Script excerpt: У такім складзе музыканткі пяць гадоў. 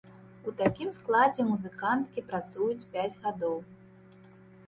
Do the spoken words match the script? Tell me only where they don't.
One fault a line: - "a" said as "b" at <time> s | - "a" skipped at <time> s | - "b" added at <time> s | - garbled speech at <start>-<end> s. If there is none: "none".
- "працуюць" added at 2.3 s